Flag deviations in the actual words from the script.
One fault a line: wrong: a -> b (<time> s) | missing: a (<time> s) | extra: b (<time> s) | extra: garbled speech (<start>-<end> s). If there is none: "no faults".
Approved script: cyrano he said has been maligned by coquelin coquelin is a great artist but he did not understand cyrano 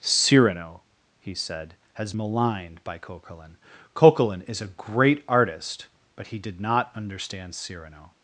missing: been (2.1 s)